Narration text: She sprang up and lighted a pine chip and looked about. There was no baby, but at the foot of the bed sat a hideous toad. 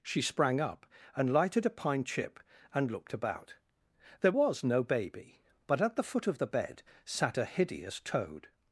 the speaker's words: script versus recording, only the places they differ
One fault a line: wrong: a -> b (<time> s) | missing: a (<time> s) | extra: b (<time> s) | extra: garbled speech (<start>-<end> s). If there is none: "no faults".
no faults